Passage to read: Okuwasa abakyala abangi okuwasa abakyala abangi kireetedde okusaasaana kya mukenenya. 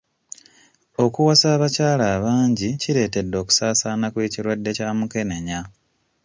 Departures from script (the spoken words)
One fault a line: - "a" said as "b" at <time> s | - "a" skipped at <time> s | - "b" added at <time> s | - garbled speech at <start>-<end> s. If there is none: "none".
- "okuwasa abakyala abangi" skipped at 2.7 s
- "kw'ekirwadde" added at 4.1 s